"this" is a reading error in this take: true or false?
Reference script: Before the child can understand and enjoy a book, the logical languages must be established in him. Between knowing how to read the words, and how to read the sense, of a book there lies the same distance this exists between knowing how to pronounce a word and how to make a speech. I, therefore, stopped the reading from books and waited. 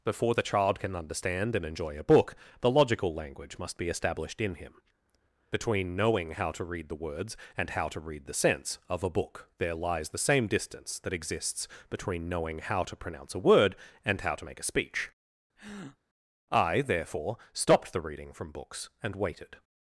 true